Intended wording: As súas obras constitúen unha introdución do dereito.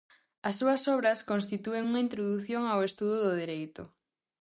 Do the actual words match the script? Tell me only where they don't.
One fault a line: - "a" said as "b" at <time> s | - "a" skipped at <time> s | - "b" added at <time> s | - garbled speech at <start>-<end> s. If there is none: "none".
- "ao estudo" added at 2.7 s